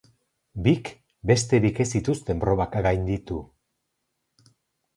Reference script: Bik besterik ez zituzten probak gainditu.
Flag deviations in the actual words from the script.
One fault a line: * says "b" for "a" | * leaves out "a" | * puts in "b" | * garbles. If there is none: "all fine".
all fine